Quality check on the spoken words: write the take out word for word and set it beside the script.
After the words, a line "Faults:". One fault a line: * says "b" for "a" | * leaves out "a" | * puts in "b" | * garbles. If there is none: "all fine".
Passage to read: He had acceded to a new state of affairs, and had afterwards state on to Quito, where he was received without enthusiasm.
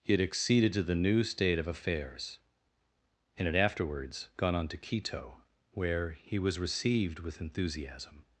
He had acceded to the new state of affairs, and had afterwards gone on to Quito, where he was received with enthusiasm.
Faults:
* says "the" for "a"
* says "gone" for "state"
* says "with" for "without"